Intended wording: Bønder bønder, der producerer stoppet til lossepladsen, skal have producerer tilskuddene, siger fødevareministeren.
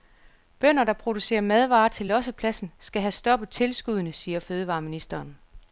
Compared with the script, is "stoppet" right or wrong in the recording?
wrong